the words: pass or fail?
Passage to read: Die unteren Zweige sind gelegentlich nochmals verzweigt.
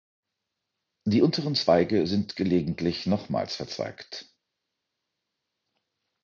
pass